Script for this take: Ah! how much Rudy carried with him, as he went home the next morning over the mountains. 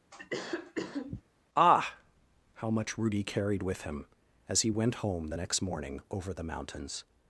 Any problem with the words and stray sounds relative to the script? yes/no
yes